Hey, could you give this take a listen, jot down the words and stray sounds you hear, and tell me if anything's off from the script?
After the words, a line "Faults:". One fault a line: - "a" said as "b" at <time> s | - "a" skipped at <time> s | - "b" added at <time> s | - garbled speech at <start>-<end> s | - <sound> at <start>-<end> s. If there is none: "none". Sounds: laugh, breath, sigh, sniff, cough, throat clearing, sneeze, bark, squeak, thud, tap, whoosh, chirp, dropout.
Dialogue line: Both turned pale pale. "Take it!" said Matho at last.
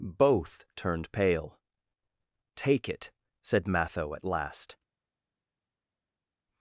Both turned pale. "Take it!" said Matho at last.
Faults:
- "pale" skipped at 1.6 s